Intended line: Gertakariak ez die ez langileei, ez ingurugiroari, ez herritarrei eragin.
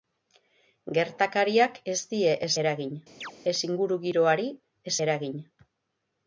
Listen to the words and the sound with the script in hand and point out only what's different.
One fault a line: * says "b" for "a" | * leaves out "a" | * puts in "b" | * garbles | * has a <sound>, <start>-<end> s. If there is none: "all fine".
* says "eragin" for "langileei"
* has a chirp, 3.2-3.3 s
* leaves out "herritarrei"